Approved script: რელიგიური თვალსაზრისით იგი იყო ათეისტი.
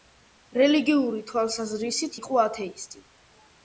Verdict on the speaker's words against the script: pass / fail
fail